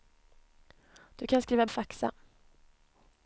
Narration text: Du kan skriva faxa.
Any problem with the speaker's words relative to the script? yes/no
no